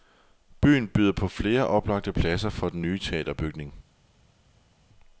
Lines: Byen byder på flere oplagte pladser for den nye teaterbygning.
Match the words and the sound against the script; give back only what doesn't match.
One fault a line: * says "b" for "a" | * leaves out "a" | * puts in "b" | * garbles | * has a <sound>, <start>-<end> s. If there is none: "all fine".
all fine